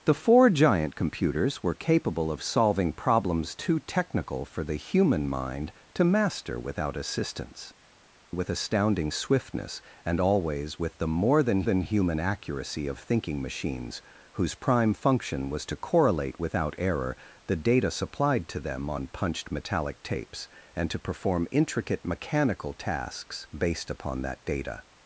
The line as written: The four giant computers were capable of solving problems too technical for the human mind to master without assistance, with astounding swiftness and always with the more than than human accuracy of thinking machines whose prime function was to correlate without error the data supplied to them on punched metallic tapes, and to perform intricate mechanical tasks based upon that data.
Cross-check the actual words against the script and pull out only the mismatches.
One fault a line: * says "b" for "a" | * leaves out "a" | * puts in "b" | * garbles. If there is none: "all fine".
all fine